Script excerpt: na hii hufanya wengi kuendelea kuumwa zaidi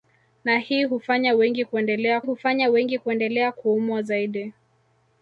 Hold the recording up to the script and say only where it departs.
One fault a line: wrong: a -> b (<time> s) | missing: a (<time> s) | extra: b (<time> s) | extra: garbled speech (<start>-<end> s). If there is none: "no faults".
extra: hufanya wengi kuendelea (2.2 s)